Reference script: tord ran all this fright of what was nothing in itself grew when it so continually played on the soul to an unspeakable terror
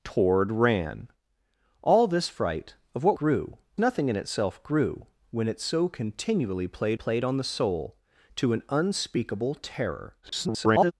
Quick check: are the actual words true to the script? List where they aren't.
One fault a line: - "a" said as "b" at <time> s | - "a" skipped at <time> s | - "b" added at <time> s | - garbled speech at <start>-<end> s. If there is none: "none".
- "was" said as "grew" at 3.1 s
- "played" added at 6.9 s
- garbled speech at 10.2-10.9 s